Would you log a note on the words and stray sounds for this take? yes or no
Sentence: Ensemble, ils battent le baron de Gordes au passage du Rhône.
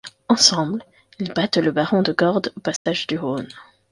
yes